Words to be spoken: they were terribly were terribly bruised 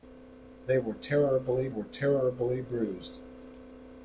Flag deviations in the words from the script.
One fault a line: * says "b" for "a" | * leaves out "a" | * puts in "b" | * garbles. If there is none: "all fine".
all fine